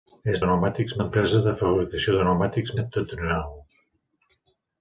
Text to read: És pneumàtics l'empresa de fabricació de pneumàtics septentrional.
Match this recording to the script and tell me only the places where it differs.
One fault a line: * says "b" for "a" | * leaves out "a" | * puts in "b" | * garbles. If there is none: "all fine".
all fine